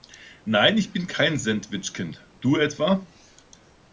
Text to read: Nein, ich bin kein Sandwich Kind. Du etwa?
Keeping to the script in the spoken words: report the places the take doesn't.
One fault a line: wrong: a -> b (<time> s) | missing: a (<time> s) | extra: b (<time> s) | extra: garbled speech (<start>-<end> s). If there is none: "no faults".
no faults